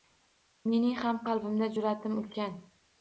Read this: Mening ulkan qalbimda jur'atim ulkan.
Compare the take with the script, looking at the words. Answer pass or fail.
fail